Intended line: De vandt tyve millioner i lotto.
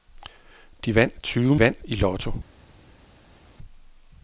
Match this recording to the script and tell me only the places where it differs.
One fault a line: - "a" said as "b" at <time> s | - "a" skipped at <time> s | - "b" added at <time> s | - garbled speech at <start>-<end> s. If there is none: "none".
- "millioner" said as "vandt" at 1.6 s